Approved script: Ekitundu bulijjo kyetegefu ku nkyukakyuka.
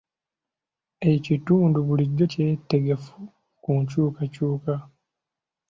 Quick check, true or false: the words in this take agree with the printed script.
true